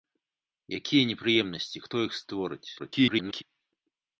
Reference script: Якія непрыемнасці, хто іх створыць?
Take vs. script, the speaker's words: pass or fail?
fail